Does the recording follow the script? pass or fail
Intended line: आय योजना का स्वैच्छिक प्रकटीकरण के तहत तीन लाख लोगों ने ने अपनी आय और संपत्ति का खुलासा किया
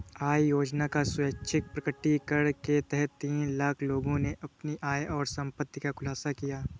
fail